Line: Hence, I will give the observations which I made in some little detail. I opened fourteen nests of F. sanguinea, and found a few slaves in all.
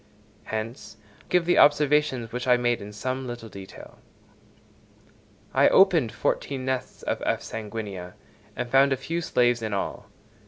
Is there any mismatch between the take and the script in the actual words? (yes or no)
yes